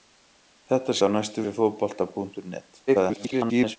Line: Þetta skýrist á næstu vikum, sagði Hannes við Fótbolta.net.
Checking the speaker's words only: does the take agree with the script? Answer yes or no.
no